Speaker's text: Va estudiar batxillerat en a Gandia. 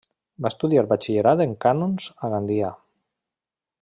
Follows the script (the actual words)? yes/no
no